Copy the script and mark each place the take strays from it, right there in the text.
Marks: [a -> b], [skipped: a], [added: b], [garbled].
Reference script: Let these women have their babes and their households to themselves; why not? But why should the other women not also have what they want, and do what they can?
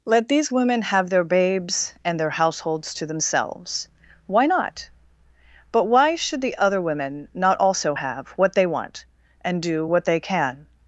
Let these women have their babes and their households to themselves; why not? But why should the other women not also have what they want, and do what they can?